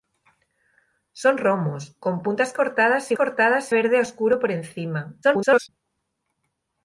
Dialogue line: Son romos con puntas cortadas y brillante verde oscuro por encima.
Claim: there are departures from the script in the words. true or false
true